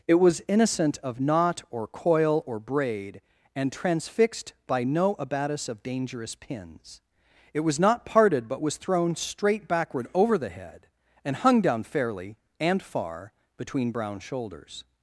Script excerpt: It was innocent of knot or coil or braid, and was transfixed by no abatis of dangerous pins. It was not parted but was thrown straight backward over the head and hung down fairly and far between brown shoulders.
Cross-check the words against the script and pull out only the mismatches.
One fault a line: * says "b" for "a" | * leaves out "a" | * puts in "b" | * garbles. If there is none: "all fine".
* leaves out "was"